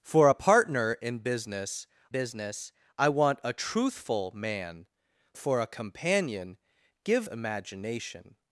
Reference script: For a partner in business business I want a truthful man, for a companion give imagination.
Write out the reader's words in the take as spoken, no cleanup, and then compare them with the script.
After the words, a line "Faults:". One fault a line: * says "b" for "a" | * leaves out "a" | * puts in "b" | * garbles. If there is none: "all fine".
For a partner in business business I want a truthful man, for a companion give imagination.
Faults:
all fine